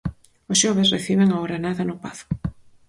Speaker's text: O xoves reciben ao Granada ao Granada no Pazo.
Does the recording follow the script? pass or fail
fail